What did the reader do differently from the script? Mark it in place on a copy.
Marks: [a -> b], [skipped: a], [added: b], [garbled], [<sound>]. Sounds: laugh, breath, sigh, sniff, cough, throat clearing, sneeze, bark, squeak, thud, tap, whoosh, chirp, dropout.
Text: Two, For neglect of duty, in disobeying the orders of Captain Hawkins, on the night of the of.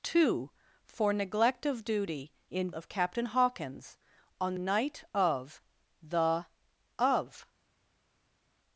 Two, For neglect of duty, in [skipped: disobeying the orders] of Captain Hawkins, on [skipped: the] night of the of.